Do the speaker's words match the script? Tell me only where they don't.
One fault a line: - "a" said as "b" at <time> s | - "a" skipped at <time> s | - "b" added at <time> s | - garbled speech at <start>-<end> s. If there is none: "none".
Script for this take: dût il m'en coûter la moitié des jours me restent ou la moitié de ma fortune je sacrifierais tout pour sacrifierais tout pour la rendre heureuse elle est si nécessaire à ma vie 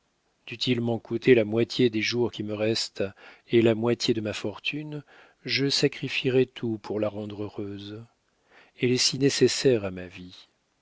- "qui" added at 2.3 s
- "ou" said as "et" at 3.5 s
- "sacrifierais tout pour" skipped at 7.0 s